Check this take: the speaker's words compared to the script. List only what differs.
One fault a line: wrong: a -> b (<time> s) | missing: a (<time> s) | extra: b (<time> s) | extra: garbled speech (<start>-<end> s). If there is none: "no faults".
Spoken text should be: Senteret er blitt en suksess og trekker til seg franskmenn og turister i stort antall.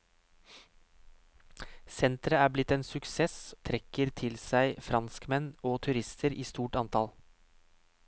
missing: og (3.4 s)